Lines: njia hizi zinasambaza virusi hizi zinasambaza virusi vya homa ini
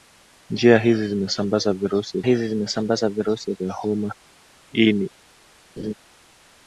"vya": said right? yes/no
yes